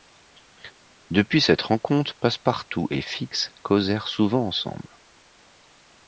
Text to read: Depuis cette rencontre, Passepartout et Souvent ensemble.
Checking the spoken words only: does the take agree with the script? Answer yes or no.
no